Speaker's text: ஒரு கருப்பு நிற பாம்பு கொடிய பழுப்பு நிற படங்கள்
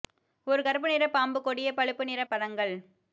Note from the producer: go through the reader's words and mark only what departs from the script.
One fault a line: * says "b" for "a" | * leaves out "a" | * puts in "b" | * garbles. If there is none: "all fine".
all fine